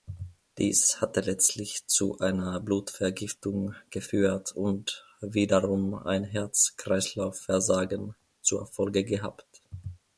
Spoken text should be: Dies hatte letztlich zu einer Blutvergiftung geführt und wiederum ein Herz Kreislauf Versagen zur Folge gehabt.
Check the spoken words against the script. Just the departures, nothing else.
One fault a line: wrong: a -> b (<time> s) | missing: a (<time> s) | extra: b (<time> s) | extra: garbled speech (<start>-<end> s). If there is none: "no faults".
no faults